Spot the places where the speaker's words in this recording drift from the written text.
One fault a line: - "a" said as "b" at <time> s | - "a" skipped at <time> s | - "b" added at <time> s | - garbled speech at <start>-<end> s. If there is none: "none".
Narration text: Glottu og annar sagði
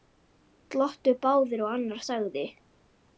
- "báðir" added at 1.3 s